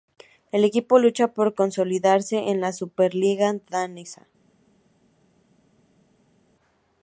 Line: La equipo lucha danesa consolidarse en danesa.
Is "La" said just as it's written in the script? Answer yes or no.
no